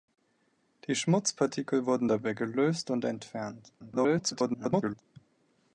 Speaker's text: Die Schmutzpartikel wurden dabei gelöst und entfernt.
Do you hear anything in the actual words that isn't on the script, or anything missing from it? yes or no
yes